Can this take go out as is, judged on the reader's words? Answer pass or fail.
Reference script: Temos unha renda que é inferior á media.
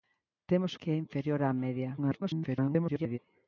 fail